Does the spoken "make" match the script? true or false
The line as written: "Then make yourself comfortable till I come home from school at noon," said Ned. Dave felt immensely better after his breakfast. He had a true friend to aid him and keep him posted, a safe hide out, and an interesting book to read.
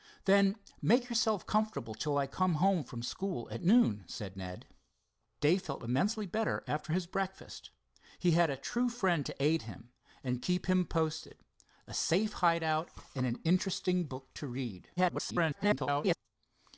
true